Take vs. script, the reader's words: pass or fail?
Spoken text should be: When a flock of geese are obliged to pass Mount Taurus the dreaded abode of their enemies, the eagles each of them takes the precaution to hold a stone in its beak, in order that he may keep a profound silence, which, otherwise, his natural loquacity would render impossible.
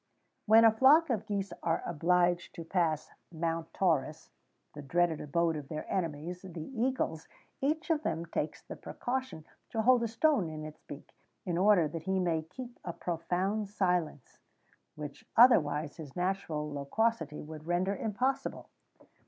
pass